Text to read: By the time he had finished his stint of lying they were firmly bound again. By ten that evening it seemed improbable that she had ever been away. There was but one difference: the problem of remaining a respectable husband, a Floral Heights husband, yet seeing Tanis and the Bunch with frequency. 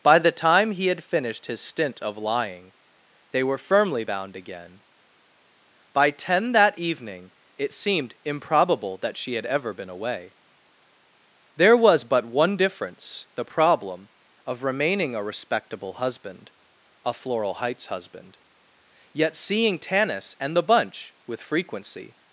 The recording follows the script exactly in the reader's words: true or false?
true